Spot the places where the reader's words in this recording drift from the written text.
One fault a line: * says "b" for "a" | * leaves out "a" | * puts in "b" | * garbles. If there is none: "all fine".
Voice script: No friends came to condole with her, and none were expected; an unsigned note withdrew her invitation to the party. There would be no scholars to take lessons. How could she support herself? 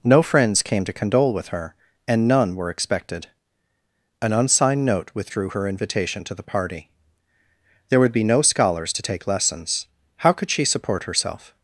all fine